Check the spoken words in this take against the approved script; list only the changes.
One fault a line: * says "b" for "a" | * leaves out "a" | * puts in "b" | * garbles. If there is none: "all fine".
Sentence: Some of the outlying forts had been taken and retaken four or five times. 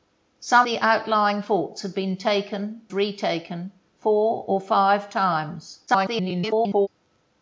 * leaves out "of"
* leaves out "and"
* garbles